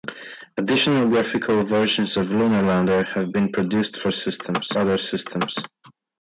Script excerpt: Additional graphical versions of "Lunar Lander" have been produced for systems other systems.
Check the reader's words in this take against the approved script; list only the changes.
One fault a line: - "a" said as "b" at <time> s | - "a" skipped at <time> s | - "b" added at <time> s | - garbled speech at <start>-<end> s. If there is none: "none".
none